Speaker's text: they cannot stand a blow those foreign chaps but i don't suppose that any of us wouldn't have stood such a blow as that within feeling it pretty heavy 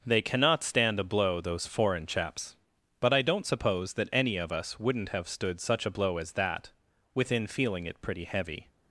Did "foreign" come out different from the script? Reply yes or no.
no